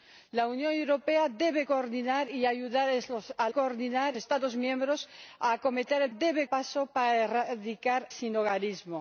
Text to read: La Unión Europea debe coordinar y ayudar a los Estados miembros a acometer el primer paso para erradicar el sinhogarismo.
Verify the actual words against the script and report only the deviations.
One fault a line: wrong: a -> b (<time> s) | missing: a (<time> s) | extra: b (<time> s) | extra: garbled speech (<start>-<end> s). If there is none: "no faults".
wrong: los -> coordinar (3.5 s)
wrong: primer -> debe (6.1 s)
missing: el (8.1 s)